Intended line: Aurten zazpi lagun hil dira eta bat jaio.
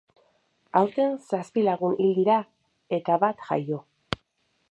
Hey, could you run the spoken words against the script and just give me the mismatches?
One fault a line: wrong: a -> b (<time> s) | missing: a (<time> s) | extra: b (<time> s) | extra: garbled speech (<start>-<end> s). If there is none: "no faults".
no faults